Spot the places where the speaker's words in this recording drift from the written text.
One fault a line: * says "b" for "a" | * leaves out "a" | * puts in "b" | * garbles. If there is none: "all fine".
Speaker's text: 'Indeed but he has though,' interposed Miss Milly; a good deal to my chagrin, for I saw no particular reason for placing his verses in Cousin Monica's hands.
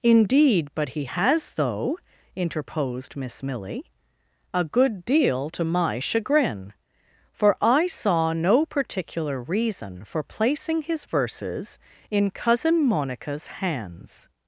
all fine